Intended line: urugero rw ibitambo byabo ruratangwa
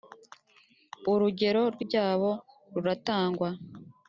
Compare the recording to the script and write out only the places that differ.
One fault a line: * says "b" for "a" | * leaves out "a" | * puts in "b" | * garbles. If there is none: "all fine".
* leaves out "ibitambo"